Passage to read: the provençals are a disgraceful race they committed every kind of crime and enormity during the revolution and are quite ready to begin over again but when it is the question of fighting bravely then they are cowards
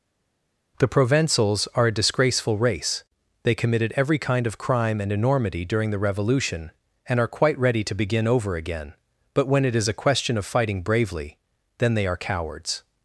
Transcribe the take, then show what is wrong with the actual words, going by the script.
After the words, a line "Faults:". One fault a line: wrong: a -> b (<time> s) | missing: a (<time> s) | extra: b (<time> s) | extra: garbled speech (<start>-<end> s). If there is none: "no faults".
the provençals are a disgraceful race they committed every kind of crime and enormity during the revolution and are quite ready to begin over again but when it is a question of fighting bravely then they are cowards
Faults:
wrong: the -> a (9.9 s)